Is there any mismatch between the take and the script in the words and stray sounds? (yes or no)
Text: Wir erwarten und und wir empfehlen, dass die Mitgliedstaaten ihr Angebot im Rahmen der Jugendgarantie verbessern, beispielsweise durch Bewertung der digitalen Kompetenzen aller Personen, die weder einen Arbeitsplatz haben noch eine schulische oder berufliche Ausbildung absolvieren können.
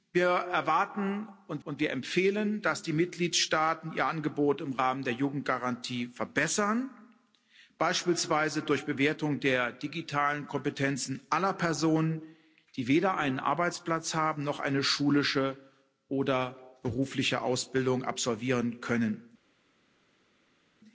no